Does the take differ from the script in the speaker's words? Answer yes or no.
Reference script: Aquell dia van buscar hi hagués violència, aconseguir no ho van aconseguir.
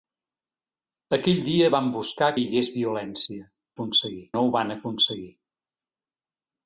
no